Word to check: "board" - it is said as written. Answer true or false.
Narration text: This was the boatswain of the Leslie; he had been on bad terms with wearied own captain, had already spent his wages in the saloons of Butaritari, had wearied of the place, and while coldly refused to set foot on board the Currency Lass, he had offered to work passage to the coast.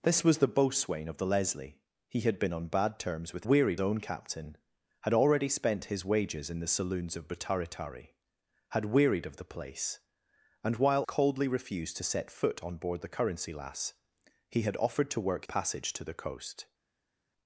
true